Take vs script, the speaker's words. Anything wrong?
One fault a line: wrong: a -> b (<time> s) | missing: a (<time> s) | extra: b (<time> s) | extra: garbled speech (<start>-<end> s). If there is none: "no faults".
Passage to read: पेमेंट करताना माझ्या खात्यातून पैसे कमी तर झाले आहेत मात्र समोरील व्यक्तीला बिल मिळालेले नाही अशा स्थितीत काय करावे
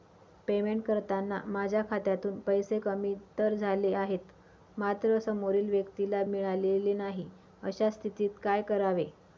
missing: बिल (6.2 s)